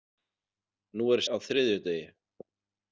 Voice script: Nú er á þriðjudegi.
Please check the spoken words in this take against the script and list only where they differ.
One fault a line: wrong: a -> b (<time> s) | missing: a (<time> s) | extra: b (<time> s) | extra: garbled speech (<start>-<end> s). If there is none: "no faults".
no faults